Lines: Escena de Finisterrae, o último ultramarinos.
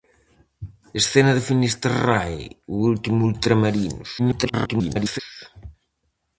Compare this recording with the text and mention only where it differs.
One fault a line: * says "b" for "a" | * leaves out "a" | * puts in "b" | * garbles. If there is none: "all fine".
* garbles